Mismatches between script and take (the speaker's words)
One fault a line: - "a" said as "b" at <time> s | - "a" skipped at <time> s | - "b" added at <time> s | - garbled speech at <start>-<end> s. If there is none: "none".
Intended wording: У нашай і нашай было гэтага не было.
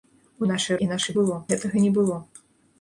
none